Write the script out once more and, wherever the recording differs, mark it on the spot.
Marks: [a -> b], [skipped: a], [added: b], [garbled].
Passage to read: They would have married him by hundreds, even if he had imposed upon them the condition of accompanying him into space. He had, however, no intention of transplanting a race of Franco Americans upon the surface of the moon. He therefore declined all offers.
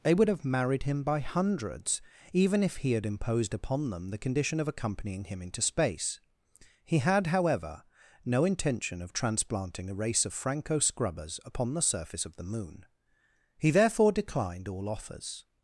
They would have married him by hundreds, even if he had imposed upon them the condition of accompanying him into space. He had, however, no intention of transplanting a race of Franco [Americans -> Scrubbers] upon the surface of the moon. He therefore declined all offers.